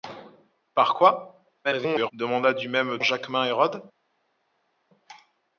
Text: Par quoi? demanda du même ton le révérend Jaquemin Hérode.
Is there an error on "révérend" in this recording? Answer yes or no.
yes